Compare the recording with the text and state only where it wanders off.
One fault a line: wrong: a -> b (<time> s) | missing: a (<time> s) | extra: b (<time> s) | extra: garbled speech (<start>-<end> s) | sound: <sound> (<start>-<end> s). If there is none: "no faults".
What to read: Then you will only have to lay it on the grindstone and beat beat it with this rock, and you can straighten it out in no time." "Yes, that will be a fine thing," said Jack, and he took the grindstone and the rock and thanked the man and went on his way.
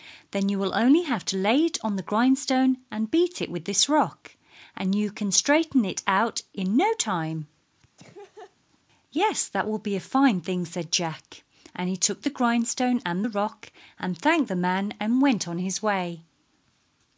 missing: beat (3.4 s)
sound: laugh (8.0-8.6 s)